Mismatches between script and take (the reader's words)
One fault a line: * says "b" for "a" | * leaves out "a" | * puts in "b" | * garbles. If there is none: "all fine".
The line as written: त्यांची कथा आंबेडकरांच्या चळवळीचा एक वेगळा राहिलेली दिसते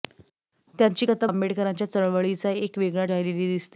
all fine